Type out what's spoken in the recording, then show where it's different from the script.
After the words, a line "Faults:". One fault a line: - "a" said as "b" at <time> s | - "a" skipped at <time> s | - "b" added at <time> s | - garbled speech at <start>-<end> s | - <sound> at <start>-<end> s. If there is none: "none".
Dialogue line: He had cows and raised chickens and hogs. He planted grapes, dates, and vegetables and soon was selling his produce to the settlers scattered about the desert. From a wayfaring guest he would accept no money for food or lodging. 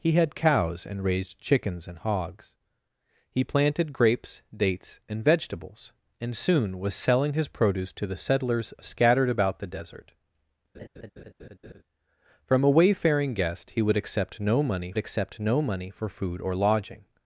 He had cows and raised chickens and hogs. He planted grapes, dates, and vegetables and soon was selling his produce to the settlers scattered about the desert. From a wayfaring guest he would accept no money accept no money for food or lodging.
Faults:
- laugh at 10.7-11.8 s
- "accept no money" added at 15.0 s